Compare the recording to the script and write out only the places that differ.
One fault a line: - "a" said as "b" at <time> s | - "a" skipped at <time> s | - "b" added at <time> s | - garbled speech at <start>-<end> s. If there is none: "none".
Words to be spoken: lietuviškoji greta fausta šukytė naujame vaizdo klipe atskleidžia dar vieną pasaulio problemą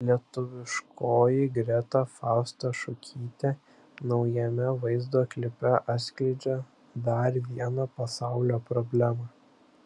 none